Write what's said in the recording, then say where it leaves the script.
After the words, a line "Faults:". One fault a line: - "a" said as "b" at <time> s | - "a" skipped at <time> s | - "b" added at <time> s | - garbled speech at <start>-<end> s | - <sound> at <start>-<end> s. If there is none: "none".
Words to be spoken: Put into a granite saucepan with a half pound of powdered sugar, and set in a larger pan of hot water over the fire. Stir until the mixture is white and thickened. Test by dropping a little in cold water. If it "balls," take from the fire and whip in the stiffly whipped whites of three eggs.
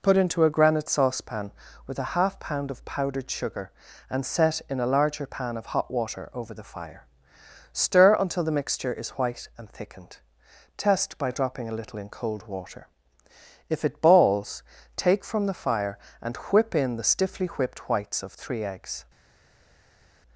Put into a granite saucepan with a half pound of powdered sugar, and set in a larger pan of hot water over the fire. Stir until the mixture is white and thickened. Test by dropping a little in cold water. If it "balls," take from the fire and whip in the stiffly whipped whites of three eggs.
Faults:
none